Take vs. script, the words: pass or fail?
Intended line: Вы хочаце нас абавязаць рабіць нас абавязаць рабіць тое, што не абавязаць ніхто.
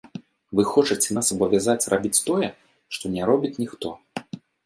fail